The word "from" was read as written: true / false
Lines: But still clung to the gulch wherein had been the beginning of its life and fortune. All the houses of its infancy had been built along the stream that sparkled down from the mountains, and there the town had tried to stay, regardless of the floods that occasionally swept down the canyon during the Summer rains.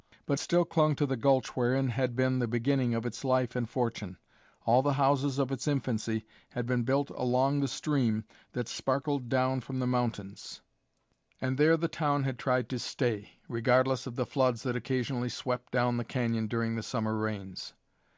true